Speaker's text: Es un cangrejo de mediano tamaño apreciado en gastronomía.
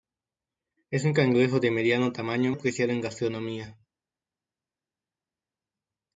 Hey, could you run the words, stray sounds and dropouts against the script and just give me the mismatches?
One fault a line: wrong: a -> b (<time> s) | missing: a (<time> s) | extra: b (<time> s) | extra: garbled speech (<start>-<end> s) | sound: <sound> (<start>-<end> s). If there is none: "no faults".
no faults